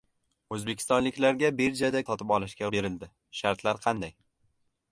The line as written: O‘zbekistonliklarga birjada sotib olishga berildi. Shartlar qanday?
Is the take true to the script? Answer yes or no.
yes